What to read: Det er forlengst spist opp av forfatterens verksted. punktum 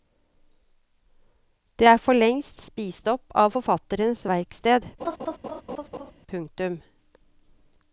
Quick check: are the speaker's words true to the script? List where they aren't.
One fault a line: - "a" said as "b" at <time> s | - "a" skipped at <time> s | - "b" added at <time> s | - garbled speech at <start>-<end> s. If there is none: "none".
none